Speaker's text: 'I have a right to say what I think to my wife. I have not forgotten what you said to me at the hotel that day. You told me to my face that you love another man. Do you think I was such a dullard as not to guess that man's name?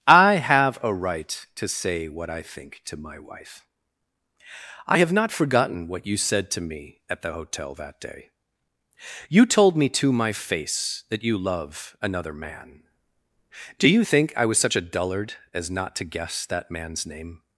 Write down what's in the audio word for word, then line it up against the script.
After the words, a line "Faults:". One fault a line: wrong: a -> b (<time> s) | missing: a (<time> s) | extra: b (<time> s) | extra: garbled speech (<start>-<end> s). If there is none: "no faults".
'I have a right to say what I think to my wife. I have not forgotten what you said to me at the hotel that day. You told me to my face that you love another man. Do you think I was such a dullard as not to guess that man's name?
Faults:
no faults